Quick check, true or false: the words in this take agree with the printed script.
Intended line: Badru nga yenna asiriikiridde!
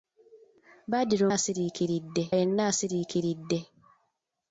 false